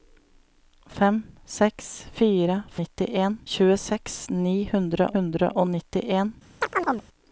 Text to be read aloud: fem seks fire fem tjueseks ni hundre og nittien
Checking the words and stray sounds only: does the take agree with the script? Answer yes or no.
no